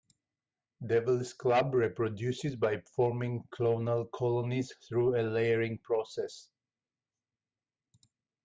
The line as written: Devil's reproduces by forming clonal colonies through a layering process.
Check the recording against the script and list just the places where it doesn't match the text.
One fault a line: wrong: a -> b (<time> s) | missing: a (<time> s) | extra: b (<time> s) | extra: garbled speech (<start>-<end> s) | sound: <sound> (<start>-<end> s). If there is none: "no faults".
extra: club (1.3 s)